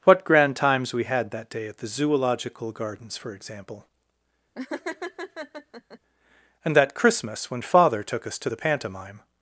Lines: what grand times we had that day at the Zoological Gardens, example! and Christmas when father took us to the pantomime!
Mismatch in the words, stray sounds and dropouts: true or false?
true